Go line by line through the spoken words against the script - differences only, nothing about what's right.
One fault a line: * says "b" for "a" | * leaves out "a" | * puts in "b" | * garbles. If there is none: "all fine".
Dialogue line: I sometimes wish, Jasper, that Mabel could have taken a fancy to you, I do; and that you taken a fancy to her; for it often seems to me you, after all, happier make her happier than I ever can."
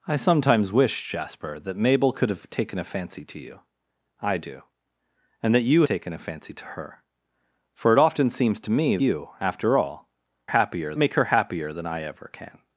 all fine